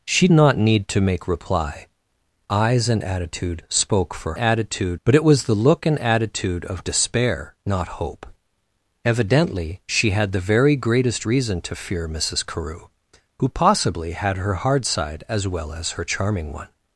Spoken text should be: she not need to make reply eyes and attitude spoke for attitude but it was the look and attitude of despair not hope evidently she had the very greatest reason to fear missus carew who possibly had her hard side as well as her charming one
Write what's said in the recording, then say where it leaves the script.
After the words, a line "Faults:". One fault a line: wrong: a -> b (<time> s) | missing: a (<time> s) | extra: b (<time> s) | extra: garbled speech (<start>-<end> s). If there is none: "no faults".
she not need to make reply eyes and attitude spoke for attitude but it was the look and attitude of despair not hope evidently she had the very greatest reason to fear missus carew who possibly had her hard side as well as her charming one
Faults:
no faults